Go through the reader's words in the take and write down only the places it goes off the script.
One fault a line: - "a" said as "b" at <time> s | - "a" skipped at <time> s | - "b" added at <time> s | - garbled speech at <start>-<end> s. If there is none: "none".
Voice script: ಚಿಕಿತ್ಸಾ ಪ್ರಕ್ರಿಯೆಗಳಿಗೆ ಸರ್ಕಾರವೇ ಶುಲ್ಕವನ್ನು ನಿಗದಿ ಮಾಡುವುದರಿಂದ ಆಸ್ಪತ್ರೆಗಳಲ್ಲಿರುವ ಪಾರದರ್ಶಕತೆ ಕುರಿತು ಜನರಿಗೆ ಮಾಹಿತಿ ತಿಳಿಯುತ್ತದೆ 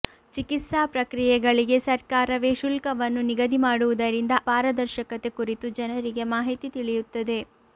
- "ಆಸ್ಪತ್ರೆಗಳಲ್ಲಿರುವ" skipped at 4.3 s